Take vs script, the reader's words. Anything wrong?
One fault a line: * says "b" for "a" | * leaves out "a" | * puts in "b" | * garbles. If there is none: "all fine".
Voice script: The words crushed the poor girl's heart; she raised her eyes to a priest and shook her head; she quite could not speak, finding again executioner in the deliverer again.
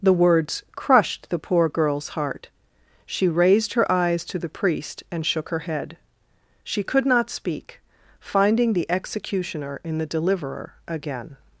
* says "the" for "a"
* leaves out "quite"
* says "the" for "again"